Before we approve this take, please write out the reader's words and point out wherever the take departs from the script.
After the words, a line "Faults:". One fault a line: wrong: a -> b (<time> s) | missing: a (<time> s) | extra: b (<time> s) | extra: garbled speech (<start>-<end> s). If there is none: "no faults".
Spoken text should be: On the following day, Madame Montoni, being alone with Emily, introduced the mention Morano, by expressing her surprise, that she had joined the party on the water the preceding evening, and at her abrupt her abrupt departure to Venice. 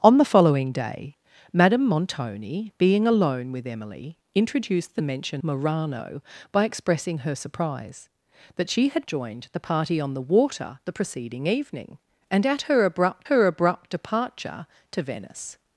On the following day, Madame Montoni, being alone with Emily, introduced the mention Morano, by expressing her surprise, that she had joined the party on the water the preceding evening, and at her abrupt her abrupt departure to Venice.
Faults:
no faults